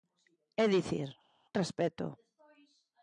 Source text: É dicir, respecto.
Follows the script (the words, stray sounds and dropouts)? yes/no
yes